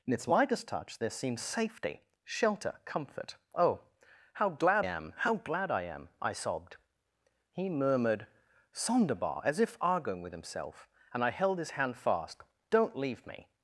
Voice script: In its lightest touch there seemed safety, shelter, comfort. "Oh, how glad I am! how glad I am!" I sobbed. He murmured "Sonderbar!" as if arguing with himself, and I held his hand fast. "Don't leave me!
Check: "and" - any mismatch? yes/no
no